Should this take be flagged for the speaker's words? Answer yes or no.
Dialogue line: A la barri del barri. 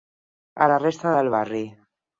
yes